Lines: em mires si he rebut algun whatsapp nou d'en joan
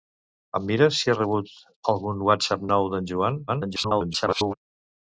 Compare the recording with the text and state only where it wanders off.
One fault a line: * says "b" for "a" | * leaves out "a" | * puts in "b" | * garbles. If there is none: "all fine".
* garbles